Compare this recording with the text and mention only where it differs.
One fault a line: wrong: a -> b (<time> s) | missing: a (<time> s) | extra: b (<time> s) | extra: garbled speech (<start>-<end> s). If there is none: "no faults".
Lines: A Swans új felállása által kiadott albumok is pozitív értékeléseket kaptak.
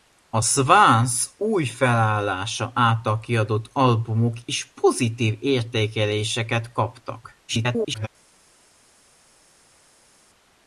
extra: garbled speech (7.5-8.1 s)